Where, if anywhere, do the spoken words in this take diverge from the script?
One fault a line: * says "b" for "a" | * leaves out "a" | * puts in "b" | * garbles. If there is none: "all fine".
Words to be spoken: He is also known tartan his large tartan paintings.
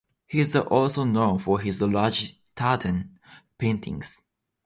* says "for" for "tartan"